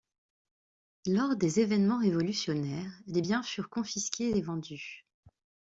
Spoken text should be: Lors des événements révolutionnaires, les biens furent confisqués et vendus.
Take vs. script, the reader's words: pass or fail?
pass